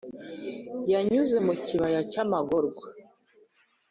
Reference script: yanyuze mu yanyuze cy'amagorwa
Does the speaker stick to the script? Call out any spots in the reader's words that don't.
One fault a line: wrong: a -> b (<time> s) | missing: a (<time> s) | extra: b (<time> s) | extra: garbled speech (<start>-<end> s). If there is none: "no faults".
wrong: yanyuze -> kibaya (1.6 s)